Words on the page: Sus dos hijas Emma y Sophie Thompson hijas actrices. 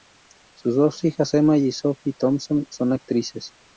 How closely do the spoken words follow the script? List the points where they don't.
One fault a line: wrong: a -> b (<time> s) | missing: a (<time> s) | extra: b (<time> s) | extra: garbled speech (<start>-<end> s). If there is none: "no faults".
wrong: hijas -> son (2.7 s)